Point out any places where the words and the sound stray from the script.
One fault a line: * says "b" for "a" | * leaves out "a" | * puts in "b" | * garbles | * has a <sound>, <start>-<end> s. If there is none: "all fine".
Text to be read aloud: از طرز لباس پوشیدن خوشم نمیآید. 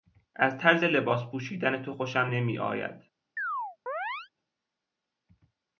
* puts in "تو"
* has a chirp, 3.4-4.3 s